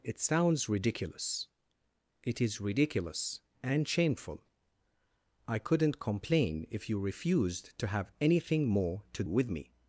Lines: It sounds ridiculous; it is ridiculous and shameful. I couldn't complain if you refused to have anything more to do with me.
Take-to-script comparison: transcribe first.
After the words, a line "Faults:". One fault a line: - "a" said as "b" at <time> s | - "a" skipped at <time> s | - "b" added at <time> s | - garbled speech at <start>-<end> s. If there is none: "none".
It sounds ridiculous; it is ridiculous and shameful. I couldn't complain if you refused to have anything more to with me.
Faults:
- "do" skipped at 9.2 s